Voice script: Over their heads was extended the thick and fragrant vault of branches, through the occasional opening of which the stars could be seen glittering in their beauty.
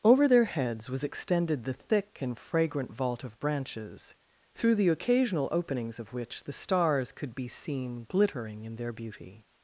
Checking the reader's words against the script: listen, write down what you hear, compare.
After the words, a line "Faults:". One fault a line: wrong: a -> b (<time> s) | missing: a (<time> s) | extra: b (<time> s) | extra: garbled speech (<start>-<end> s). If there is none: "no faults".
Over their heads was extended the thick and fragrant vault of branches, through the occasional openings of which the stars could be seen glittering in their beauty.
Faults:
wrong: opening -> openings (5.5 s)